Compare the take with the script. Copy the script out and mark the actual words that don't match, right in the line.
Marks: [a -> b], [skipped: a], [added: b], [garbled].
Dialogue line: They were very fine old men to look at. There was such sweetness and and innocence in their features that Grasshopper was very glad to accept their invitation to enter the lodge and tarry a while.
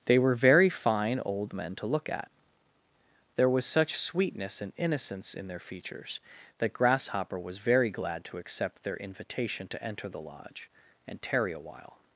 They were very fine old men to look at. There was such sweetness and [skipped: and] innocence in their features that Grasshopper was very glad to accept their invitation to enter the lodge and tarry a while.